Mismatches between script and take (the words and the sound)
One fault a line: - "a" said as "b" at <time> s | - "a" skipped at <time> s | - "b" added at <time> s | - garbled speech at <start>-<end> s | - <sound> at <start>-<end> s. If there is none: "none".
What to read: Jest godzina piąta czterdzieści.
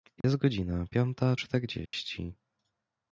- dropout at 0.2-0.2 s
- dropout at 1.9-1.9 s